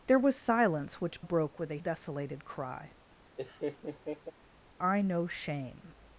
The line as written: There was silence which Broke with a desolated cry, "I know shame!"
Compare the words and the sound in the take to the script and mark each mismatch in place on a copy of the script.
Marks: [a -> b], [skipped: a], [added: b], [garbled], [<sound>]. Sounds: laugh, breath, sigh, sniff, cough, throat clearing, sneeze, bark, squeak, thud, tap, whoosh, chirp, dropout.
There was silence which Broke with a desolated cry, [laugh] "I know shame!"